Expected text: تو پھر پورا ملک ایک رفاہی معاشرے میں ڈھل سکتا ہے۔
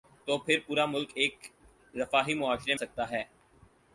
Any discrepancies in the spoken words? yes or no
yes